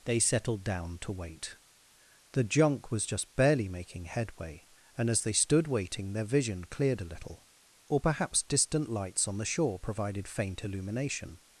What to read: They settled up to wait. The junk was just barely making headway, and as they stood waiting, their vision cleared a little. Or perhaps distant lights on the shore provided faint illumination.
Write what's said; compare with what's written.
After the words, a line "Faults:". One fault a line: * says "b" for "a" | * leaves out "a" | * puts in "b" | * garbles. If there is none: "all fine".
They settled down to wait. The junk was just barely making headway, and as they stood waiting, their vision cleared a little. Or perhaps distant lights on the shore provided faint illumination.
Faults:
* says "down" for "up"